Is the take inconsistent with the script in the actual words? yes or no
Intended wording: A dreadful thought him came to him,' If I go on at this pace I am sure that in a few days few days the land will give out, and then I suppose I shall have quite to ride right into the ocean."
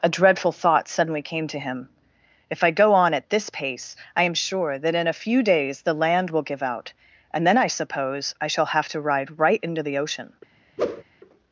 yes